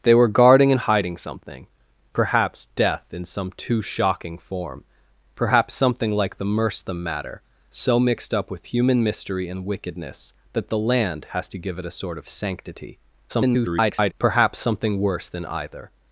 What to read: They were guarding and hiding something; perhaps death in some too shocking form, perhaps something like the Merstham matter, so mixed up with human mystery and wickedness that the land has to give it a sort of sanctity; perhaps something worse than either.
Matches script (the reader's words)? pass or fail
fail